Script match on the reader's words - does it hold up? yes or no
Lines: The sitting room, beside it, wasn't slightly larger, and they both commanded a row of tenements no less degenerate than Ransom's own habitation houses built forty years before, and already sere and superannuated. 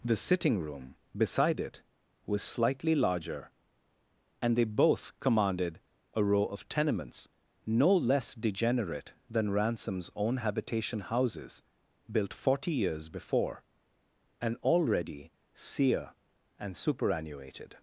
no